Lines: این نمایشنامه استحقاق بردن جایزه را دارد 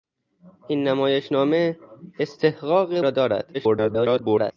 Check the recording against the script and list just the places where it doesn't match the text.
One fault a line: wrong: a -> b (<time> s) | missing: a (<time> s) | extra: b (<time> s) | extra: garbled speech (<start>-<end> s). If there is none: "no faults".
missing: بردن جایزه (3.0 s)
extra: garbled speech (3.5-4.5 s)